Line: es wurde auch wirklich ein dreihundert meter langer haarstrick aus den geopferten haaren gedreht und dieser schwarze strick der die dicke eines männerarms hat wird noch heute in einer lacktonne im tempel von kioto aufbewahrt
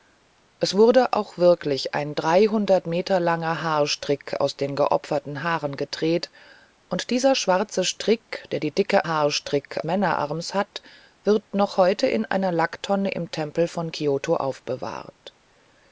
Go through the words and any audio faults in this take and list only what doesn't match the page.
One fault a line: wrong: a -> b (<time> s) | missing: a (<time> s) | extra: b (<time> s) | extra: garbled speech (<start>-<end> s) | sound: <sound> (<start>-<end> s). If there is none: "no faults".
wrong: eines -> haarstrick (9.0 s)